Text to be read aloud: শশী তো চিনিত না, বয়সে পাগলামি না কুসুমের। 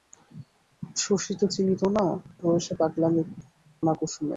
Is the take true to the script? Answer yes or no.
yes